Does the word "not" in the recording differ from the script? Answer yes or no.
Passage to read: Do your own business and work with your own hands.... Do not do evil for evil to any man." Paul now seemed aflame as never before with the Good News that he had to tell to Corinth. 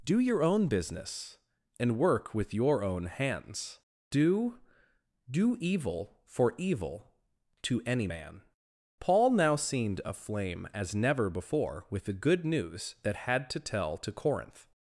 yes